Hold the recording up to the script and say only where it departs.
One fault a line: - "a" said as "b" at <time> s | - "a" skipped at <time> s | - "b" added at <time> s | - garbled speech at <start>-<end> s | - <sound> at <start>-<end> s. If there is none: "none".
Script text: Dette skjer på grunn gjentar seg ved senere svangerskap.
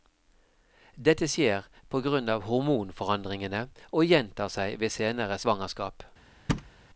- "av hormonforandringene og" added at 2.3 s
- thud at 6.5-6.7 s